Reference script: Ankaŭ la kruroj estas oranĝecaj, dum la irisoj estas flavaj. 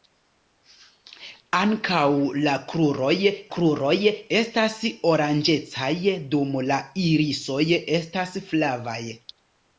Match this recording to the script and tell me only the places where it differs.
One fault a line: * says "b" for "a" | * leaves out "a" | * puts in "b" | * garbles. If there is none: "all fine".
* puts in "kruroj"